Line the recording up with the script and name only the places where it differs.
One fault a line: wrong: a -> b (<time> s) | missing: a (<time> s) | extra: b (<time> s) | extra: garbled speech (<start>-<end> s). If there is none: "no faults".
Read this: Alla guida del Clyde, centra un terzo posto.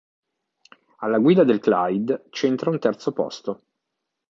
no faults